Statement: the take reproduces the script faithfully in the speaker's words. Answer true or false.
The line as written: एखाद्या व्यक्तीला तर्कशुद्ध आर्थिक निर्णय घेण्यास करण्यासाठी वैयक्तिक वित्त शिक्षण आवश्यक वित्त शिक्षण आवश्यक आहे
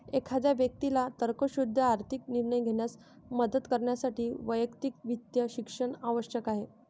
false